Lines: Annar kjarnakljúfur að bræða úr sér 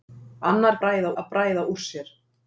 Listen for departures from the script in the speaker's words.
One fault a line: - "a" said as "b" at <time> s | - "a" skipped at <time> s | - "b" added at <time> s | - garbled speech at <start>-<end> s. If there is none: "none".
- "kjarnakljúfur" said as "bræða" at 0.8 s